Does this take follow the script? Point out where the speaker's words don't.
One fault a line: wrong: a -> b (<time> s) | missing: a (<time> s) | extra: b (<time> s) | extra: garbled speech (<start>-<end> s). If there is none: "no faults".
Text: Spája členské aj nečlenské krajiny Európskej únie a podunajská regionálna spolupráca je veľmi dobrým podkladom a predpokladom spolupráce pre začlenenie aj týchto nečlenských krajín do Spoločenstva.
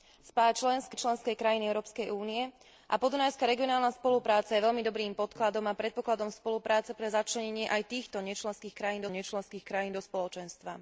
missing: aj (0.9 s)
extra: nečlenských krajín (9.1 s)